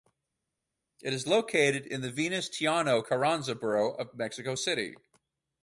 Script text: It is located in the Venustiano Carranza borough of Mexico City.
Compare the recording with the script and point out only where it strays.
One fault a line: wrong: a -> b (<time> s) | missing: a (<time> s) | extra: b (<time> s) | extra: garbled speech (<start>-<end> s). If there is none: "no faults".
no faults